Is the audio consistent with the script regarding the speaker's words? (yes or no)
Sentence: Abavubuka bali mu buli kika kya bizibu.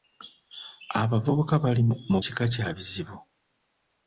no